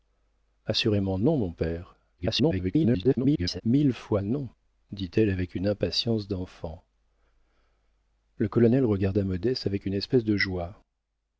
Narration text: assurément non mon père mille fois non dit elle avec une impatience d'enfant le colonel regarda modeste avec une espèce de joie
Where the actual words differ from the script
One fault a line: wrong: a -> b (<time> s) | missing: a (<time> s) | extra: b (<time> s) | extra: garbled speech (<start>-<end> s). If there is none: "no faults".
extra: garbled speech (2.2-3.6 s)